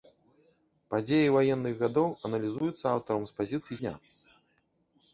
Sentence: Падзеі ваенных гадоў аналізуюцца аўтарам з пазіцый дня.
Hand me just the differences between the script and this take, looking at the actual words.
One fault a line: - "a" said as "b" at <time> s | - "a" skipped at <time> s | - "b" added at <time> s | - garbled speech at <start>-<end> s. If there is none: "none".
none